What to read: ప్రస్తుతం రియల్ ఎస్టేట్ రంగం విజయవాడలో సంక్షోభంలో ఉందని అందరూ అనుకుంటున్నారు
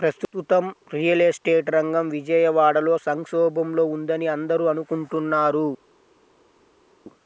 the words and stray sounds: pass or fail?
pass